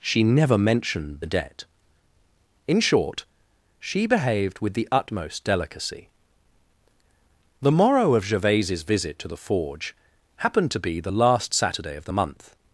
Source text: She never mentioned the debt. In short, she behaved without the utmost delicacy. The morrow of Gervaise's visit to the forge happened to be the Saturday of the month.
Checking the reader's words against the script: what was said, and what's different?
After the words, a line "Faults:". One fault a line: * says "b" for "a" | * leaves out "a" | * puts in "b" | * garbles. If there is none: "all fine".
She never mentioned the debt. In short, she behaved with the utmost delicacy. The morrow of Gervaise's visit to the forge happened to be the last Saturday of the month.
Faults:
* says "with" for "without"
* puts in "last"